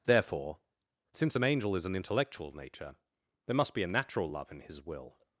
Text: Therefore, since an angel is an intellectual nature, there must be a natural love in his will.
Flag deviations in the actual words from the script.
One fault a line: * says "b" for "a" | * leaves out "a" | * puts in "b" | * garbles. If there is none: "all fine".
all fine